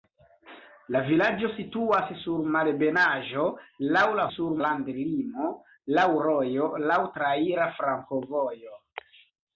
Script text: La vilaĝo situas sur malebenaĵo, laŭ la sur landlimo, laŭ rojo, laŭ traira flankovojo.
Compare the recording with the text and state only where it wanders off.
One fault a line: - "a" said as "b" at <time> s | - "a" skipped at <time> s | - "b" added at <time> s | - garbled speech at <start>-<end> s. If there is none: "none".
none